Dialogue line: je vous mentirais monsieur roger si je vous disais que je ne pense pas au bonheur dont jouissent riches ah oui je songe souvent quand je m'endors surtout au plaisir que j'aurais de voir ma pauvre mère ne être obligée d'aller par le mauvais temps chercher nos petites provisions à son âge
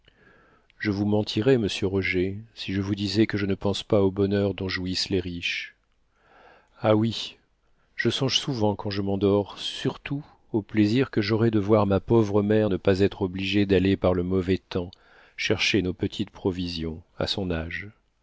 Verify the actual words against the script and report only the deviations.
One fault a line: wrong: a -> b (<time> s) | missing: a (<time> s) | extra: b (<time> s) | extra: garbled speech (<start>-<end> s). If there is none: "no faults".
extra: les (5.1 s)
extra: pas (12.8 s)